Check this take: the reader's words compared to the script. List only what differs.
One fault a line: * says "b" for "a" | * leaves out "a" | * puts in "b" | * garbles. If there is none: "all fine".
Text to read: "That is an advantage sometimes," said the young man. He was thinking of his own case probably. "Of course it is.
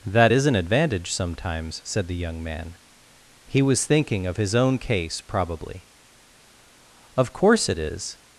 all fine